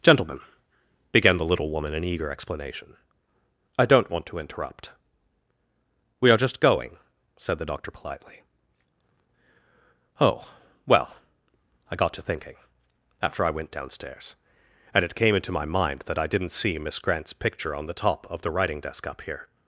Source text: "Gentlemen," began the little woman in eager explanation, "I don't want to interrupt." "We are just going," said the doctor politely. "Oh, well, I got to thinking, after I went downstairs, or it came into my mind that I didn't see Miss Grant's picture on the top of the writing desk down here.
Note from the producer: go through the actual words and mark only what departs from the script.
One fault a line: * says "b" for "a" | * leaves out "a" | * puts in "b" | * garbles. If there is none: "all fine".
* says "and" for "or"
* says "up" for "down"